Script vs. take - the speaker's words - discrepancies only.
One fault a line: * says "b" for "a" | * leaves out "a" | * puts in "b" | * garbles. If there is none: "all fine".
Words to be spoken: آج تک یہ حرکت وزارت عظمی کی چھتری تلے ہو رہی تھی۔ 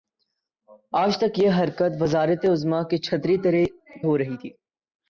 * leaves out "تلے"